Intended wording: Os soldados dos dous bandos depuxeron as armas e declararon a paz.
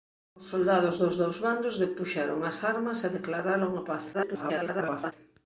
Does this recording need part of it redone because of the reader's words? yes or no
yes